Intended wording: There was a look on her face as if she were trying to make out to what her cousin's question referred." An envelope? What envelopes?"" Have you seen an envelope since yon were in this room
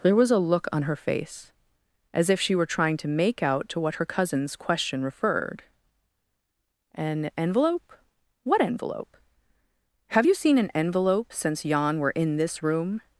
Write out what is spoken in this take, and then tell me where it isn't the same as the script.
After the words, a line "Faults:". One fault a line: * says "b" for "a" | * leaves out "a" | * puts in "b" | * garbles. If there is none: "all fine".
There was a look on her face as if she were trying to make out to what her cousin's question referred." An envelope? What envelope?"" Have you seen an envelope since yon were in this room
Faults:
* says "envelope" for "envelopes"